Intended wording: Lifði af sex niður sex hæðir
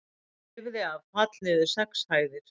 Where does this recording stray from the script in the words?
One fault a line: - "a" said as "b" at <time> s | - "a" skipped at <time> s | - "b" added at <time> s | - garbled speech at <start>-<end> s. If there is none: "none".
- "sex" said as "fall" at 1.2 s